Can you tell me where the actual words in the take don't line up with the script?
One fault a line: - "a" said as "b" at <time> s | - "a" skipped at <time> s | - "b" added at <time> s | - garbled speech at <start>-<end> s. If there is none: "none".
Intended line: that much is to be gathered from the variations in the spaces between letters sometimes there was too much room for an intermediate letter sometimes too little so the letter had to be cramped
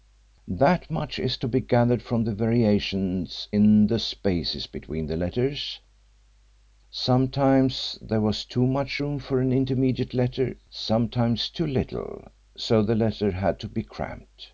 - "the" added at 5.1 s